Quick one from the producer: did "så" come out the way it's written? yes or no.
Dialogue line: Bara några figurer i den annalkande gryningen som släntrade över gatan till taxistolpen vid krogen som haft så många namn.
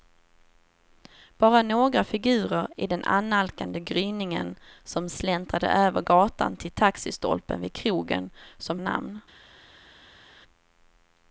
no